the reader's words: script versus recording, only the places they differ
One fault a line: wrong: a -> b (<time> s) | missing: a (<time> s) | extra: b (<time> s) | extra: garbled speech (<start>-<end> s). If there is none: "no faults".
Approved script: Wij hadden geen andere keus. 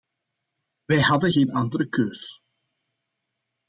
no faults